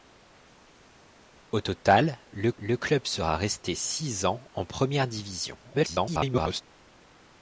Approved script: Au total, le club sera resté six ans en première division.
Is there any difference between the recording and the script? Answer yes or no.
yes